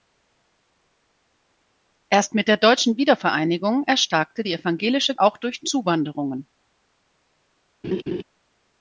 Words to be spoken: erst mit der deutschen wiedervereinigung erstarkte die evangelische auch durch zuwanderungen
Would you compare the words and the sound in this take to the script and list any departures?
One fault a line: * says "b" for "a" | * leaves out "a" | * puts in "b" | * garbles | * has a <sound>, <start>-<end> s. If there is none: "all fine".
* has a laugh, 7.8-8.2 s